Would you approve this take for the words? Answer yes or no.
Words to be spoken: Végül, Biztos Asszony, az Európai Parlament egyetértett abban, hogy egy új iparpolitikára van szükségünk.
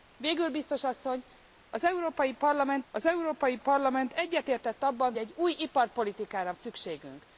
no